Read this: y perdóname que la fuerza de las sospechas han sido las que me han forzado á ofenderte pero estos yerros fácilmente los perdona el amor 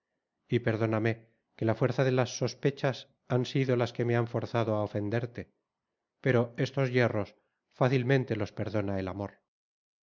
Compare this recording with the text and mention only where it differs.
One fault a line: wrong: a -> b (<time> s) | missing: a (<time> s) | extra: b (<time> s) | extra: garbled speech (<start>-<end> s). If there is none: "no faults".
no faults